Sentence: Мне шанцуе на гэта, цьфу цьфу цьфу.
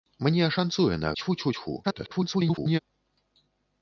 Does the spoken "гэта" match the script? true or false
false